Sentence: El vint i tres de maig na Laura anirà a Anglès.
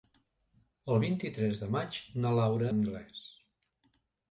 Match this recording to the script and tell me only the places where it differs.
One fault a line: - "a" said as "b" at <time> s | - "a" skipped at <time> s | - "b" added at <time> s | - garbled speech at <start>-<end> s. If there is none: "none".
- "anirà a" skipped at 2.7 s